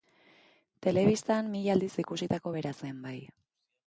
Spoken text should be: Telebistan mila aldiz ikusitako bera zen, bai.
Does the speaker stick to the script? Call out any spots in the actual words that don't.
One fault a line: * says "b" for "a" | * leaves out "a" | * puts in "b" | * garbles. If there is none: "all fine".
all fine